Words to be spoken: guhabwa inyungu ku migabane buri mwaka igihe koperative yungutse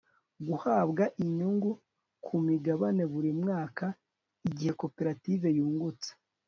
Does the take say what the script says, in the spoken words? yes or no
yes